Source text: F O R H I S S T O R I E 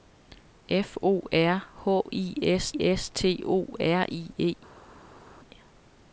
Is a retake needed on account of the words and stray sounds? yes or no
no